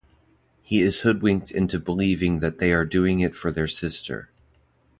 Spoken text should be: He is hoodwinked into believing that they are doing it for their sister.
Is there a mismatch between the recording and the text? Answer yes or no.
no